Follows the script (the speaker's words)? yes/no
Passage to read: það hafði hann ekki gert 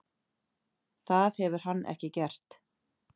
no